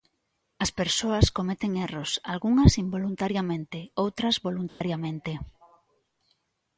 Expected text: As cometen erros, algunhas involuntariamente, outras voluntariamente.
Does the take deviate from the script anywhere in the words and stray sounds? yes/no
yes